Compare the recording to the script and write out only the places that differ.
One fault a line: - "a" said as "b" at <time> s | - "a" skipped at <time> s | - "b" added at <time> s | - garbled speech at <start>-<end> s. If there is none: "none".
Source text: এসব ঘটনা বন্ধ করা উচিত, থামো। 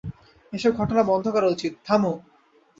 none